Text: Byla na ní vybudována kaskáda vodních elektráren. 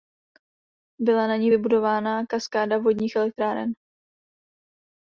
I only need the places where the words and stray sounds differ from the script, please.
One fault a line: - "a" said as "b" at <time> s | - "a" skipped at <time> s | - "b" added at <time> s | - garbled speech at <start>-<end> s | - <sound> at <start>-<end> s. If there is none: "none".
none